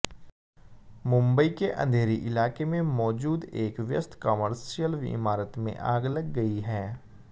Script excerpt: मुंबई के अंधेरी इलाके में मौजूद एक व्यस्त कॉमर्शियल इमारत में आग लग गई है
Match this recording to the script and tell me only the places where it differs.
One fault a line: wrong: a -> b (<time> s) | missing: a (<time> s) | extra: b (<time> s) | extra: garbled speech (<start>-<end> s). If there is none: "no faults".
no faults